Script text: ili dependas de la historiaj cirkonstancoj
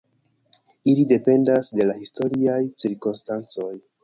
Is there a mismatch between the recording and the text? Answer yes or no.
no